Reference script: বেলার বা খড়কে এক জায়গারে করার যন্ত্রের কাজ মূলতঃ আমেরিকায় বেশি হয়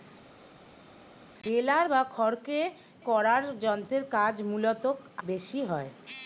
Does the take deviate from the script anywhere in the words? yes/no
yes